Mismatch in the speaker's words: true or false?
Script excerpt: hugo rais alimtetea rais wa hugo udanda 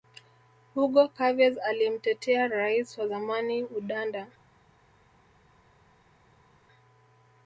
true